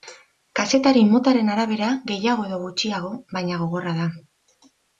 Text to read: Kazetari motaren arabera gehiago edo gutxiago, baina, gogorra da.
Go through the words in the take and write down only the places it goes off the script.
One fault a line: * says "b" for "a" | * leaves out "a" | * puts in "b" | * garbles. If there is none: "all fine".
all fine